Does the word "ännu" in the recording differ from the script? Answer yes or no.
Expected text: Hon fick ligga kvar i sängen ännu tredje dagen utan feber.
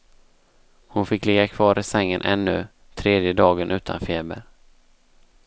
no